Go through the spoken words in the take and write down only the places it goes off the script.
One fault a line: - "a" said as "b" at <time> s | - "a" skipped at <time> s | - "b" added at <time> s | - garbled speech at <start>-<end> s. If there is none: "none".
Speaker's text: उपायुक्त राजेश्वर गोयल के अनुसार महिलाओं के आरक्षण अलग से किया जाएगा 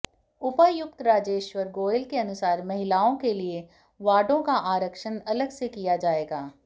- "लिए वार्डों का" added at 3.3 s